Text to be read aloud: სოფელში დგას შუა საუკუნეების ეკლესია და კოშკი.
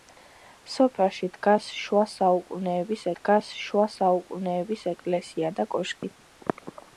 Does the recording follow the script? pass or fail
fail